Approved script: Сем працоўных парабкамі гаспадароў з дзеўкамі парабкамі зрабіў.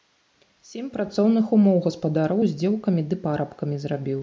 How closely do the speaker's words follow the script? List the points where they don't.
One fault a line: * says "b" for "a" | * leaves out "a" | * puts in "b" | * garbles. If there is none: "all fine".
* says "умоў" for "парабкамі"
* puts in "ды"